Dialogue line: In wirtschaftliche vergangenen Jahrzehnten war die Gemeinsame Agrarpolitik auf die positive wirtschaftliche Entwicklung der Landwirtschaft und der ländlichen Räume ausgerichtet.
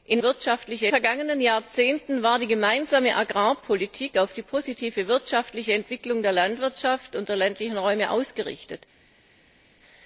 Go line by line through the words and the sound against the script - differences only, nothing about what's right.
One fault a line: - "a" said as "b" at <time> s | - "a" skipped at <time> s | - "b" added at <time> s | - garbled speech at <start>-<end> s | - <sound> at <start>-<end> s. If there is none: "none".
none